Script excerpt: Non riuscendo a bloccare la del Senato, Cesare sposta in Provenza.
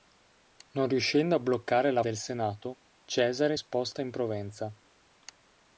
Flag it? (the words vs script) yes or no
no